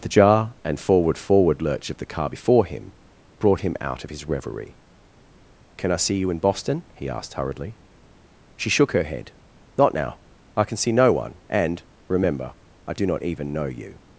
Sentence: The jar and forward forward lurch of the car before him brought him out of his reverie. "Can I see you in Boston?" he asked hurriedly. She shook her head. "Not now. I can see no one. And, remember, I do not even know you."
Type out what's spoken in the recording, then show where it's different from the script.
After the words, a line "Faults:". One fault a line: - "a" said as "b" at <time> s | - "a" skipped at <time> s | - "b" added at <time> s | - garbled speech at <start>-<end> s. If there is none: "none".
The jar and forward forward lurch of the car before him brought him out of his reverie. "Can I see you in Boston?" he asked hurriedly. She shook her head. "Not now. I can see no one. And, remember, I do not even know you."
Faults:
none